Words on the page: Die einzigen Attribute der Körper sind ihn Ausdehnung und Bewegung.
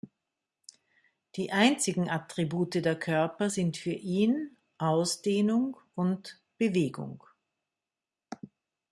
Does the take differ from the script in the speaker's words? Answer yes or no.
yes